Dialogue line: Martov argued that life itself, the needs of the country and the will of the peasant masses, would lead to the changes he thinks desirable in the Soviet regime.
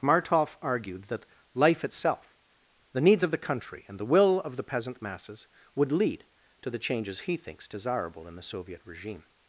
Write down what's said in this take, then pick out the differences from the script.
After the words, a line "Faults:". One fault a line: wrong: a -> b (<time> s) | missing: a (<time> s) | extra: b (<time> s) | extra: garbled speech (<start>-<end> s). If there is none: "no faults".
Martov argued that life itself, the needs of the country and the will of the peasant masses, would lead to the changes he thinks desirable in the Soviet regime.
Faults:
no faults